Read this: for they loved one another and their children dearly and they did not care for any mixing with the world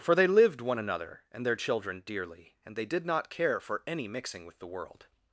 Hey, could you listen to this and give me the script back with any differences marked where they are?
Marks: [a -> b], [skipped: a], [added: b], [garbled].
for they [loved -> lived] one another and their children dearly and they did not care for any mixing with the world